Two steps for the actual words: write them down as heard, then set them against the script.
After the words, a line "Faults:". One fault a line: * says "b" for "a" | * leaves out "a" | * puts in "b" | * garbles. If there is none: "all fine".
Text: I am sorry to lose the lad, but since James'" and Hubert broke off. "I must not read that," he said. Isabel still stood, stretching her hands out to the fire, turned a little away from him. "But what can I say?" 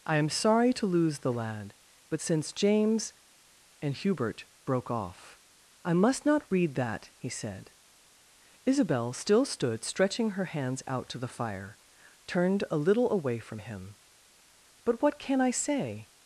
I am sorry to lose the lad, but since James'" and Hubert broke off. "I must not read that," he said. Isabel still stood, stretching her hands out to the fire, turned a little away from him. "But what can I say?"
Faults:
all fine